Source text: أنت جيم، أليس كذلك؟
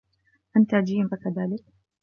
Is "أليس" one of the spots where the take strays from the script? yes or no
yes